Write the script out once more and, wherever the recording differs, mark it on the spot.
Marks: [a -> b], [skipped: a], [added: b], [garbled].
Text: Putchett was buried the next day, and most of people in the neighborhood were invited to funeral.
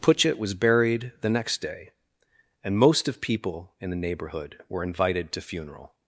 Putchett was buried the next day, and most of people in the neighborhood were invited to funeral.